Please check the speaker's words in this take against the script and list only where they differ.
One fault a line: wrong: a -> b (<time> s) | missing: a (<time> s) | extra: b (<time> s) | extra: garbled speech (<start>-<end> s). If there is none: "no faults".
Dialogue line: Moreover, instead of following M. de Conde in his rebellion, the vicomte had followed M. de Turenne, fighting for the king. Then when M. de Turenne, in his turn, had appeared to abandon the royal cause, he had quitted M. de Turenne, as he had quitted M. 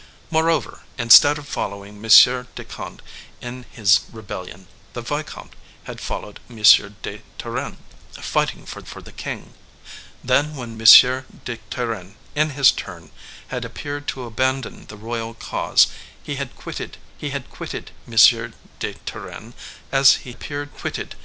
extra: for (8.8 s)
extra: he had quitted (17.1 s)
wrong: had -> appeared (20.3 s)